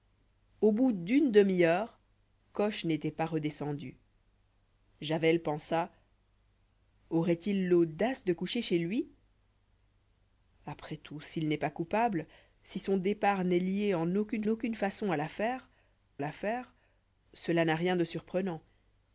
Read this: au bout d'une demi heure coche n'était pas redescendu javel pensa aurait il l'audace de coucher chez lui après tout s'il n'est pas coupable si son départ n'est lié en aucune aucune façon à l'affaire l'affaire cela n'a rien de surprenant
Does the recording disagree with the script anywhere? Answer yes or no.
no